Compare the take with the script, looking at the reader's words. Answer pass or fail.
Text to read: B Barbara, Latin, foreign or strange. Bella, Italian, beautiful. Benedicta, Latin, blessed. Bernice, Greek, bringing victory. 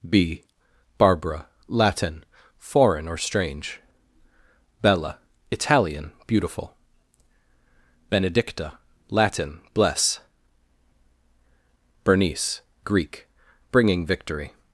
fail